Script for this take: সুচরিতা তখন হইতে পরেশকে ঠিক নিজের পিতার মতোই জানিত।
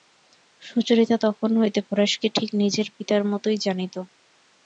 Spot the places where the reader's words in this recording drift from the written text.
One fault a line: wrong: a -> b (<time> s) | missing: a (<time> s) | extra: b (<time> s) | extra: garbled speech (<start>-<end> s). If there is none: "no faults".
no faults